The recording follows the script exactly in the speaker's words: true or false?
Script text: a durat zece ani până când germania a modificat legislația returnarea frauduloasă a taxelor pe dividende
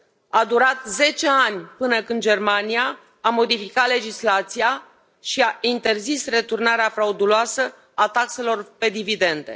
false